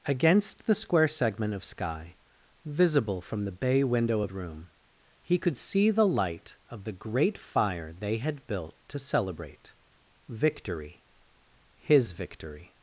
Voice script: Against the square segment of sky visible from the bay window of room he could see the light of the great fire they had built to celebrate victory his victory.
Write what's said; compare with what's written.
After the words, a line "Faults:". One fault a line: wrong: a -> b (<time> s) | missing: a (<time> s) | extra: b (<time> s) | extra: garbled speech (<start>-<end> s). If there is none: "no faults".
Against the square segment of sky visible from the bay window of room he could see the light of the great fire they had built to celebrate victory his victory.
Faults:
no faults